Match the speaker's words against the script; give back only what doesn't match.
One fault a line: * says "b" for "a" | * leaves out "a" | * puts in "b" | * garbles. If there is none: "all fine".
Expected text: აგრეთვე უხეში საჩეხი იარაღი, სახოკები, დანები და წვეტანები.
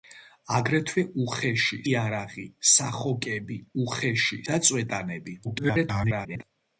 * leaves out "საჩეხი"
* says "უხეში" for "დანები"
* garbles